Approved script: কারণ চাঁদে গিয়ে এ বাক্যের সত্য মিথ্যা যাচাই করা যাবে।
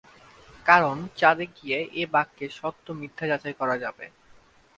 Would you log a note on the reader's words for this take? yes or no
no